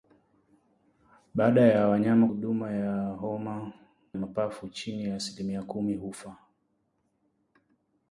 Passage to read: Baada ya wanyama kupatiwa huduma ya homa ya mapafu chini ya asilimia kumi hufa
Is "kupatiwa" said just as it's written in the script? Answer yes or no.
no